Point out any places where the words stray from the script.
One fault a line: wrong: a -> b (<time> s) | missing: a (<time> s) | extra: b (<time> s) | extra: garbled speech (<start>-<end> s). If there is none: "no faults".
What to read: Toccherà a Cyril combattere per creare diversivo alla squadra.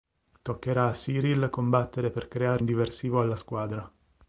no faults